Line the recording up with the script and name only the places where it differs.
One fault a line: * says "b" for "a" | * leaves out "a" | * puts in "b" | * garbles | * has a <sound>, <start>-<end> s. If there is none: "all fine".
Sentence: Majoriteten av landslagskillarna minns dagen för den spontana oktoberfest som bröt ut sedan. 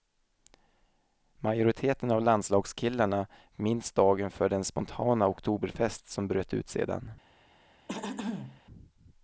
* has a throat clearing, 7.9-8.6 s